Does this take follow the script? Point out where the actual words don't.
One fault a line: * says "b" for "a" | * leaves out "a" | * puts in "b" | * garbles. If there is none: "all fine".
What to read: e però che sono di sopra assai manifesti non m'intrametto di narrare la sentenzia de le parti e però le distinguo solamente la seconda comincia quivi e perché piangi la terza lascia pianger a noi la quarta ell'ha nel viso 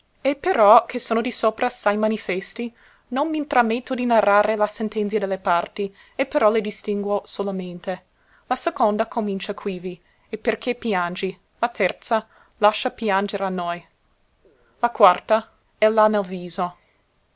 all fine